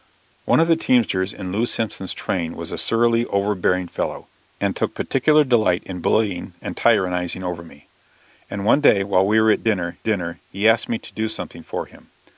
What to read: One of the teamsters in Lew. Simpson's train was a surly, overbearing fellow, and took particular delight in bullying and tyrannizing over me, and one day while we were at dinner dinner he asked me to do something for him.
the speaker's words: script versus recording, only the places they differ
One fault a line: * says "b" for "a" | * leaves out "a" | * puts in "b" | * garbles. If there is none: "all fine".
all fine